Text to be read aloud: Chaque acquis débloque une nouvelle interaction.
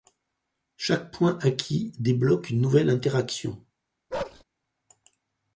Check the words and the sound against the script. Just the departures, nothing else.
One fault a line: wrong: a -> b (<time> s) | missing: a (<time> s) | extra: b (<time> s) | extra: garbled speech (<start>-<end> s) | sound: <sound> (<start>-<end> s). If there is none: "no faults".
extra: point (1.1 s)
sound: bark (4.1-4.4 s)